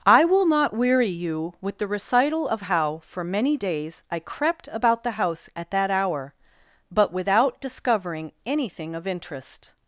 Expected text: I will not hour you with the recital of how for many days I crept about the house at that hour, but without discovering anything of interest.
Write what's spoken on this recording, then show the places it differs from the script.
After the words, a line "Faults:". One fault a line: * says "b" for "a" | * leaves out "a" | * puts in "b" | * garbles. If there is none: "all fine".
I will not weary you with the recital of how for many days I crept about the house at that hour, but without discovering anything of interest.
Faults:
* says "weary" for "hour"